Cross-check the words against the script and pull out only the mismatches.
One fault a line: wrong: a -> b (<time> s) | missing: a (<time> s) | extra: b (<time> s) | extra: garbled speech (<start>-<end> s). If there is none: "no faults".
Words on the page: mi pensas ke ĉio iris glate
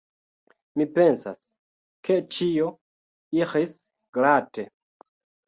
no faults